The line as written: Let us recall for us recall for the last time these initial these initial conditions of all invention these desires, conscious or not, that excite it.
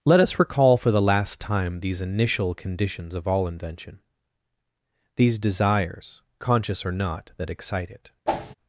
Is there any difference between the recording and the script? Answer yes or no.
yes